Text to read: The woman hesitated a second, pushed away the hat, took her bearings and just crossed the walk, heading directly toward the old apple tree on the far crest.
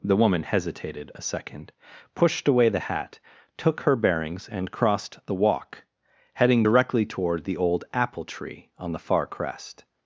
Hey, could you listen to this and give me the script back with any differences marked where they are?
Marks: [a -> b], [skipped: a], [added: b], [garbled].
The woman hesitated a second, pushed away the hat, took her bearings and [skipped: just] crossed the walk, heading directly toward the old apple tree on the far crest.